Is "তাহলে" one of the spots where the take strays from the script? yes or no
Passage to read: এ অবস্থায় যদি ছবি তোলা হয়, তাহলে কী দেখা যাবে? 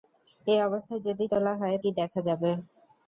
yes